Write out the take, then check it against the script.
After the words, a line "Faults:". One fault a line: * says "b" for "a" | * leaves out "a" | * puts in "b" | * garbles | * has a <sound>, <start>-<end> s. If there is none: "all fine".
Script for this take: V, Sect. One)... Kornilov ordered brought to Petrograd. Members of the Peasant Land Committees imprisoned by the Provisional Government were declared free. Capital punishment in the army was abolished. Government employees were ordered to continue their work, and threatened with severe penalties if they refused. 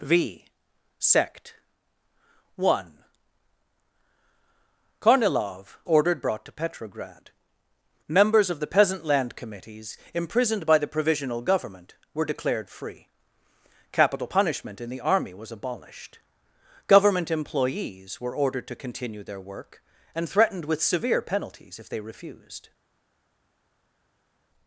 V, Sect. One)... Kornilov ordered brought to Petrograd. Members of the Peasant Land Committees imprisoned by the Provisional Government were declared free. Capital punishment in the army was abolished. Government employees were ordered to continue their work, and threatened with severe penalties if they refused.
Faults:
all fine